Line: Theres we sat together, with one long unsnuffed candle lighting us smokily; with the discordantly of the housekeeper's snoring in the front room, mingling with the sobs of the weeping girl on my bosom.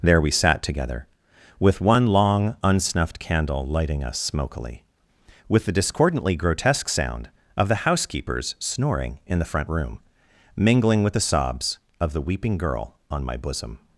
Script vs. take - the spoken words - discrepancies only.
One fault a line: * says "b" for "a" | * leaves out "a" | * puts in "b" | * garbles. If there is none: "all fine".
* says "There" for "Theres"
* puts in "grotesque sound"